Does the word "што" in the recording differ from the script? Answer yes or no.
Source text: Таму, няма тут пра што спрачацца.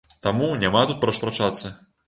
yes